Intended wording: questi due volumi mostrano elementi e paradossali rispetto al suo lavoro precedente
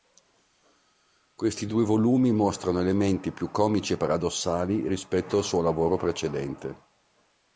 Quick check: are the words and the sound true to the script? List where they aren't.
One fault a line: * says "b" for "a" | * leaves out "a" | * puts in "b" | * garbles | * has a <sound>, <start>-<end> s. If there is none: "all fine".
* puts in "più comici"